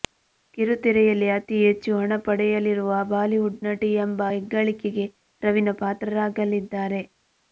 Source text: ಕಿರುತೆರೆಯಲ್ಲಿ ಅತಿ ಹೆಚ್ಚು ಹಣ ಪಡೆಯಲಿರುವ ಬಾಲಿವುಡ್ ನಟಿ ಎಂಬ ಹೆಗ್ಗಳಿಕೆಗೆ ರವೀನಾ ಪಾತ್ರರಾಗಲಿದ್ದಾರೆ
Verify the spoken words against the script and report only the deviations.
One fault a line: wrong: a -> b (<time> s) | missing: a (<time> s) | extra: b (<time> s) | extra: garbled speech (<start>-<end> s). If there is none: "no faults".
no faults